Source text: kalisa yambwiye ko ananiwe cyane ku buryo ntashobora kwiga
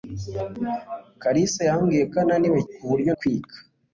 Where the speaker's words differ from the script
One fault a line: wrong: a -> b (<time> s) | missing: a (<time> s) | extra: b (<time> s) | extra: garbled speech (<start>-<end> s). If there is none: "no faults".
missing: cyane (2.6 s)
missing: ntashobora (3.1 s)